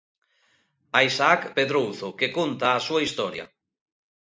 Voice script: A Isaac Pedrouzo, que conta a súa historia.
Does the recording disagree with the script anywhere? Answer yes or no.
no